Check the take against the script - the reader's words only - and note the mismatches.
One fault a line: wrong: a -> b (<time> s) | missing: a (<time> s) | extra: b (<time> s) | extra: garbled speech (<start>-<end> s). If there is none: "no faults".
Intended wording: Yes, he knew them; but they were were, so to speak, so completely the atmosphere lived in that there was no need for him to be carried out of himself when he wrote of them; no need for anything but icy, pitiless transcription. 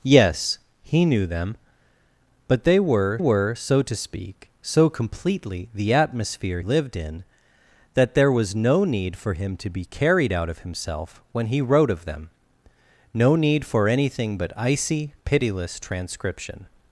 no faults